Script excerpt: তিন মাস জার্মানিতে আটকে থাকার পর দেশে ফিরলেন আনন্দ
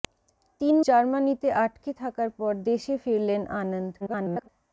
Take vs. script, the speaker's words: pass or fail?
fail